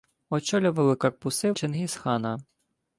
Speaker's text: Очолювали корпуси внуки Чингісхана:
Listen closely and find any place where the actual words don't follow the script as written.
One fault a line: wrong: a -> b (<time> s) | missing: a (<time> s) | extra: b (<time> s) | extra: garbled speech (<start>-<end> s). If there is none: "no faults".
missing: внуки (1.5 s)